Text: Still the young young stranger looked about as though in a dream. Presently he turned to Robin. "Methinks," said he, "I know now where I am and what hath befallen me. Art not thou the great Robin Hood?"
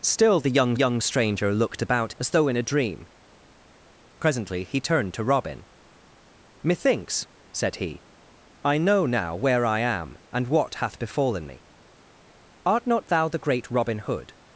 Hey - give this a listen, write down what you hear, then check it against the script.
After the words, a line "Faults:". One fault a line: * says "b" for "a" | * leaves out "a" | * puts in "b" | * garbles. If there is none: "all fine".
Still the young young stranger looked about as though in a dream. Presently he turned to Robin. "Methinks," said he, "I know now where I am and what hath befallen me. Art not thou the great Robin Hood?"
Faults:
all fine